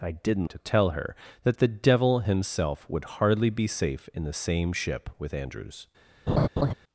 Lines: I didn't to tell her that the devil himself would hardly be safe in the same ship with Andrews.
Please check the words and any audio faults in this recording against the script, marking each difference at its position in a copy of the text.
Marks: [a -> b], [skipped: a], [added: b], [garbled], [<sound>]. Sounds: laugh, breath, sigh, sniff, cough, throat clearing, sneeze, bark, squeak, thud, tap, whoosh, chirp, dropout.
I didn't to tell her that the devil himself would hardly be safe in the same ship with Andrews. [laugh]